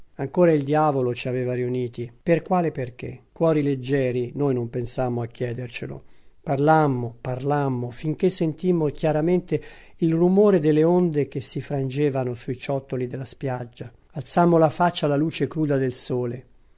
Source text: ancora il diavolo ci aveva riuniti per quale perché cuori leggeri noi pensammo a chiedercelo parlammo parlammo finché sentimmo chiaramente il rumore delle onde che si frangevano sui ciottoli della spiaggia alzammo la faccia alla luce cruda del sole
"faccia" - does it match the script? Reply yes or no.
yes